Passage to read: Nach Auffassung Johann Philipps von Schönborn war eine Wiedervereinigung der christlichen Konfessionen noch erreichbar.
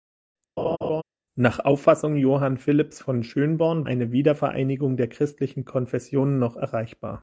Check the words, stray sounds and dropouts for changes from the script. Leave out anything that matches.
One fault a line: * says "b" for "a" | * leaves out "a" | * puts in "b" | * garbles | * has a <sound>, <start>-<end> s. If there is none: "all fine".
* has a laugh, 0.6-1.0 s
* leaves out "war"